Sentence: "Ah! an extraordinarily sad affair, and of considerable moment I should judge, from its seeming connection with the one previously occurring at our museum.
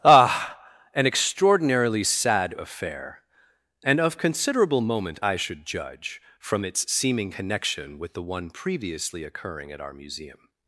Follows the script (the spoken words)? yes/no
yes